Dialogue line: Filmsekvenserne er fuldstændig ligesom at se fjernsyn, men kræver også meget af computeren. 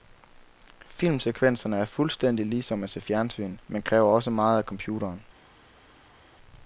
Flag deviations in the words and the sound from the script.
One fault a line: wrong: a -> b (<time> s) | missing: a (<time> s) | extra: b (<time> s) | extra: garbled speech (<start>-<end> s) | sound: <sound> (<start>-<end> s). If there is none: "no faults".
no faults